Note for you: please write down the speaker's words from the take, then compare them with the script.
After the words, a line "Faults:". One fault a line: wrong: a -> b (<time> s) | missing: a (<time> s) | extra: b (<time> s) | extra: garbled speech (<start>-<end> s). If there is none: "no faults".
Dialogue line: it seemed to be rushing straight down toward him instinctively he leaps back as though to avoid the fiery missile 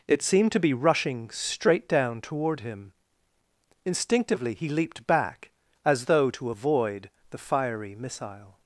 it seemed to be rushing straight down toward him instinctively he leaped back as though to avoid the fiery missile
Faults:
wrong: leaps -> leaped (4.7 s)